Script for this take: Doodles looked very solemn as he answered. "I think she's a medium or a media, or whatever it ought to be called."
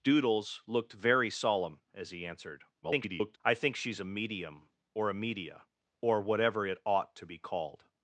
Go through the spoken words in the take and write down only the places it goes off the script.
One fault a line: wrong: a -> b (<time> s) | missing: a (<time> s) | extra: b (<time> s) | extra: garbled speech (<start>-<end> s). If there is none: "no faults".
extra: garbled speech (2.8-3.4 s)